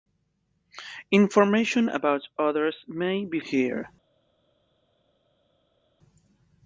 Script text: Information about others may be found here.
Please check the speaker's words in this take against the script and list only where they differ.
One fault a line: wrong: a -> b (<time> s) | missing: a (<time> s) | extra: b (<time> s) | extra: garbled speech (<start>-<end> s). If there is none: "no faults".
missing: found (3.4 s)